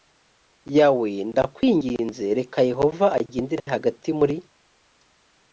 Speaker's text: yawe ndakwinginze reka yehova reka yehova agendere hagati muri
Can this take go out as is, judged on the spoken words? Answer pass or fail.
fail